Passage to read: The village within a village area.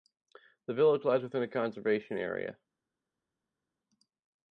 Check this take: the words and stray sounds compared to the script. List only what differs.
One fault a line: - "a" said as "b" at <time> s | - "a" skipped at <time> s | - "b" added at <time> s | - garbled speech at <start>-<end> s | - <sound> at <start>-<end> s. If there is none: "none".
- "lies" added at 1.0 s
- "village" said as "conservation" at 1.5 s